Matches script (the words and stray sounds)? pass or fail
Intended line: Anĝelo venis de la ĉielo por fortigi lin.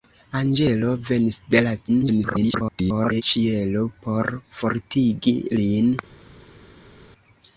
fail